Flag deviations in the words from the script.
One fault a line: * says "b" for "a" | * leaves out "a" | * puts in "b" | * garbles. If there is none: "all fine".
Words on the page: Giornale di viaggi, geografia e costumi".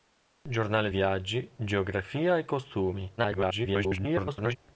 * leaves out "di"
* garbles